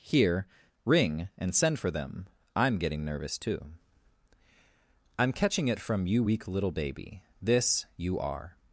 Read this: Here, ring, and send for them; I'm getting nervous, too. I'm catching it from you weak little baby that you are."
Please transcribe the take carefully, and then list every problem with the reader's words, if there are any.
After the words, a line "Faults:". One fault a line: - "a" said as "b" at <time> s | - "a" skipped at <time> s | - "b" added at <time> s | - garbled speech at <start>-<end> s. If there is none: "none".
Here, ring, and send for them; I'm getting nervous, too. I'm catching it from you weak little baby this you are."
Faults:
- "that" said as "this" at 7.4 s